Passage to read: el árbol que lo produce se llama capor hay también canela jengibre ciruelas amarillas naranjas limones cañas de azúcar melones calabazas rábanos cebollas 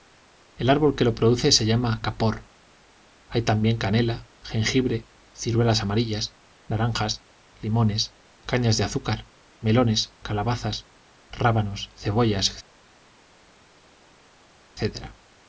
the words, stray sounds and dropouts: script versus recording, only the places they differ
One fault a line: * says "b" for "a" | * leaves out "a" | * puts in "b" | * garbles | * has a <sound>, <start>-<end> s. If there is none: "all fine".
all fine